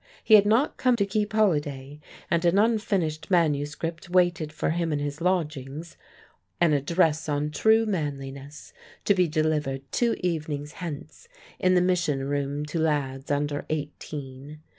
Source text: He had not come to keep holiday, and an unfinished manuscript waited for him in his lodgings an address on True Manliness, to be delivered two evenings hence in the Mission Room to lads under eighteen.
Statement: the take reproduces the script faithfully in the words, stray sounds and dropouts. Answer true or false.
true